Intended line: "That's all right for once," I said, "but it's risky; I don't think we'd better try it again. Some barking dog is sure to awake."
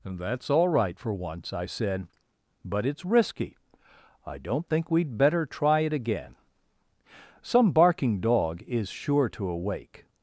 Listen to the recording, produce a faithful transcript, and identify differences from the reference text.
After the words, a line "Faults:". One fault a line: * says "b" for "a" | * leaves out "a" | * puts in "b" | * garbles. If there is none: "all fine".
"That's all right for once," I said, "but it's risky; I don't think we'd better try it again. Some barking dog is sure to awake."
Faults:
all fine